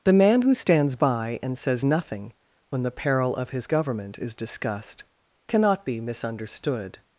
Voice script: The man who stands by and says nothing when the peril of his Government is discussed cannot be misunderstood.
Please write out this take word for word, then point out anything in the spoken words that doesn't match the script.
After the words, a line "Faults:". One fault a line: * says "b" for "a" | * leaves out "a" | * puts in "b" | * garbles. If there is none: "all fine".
The man who stands by and says nothing when the peril of his Government is discussed cannot be misunderstood.
Faults:
all fine